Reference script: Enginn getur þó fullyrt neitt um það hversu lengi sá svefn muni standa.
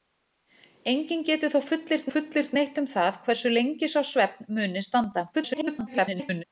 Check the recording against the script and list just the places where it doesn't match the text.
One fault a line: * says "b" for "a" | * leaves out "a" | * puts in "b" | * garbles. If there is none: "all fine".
* puts in "fullyrt"
* garbles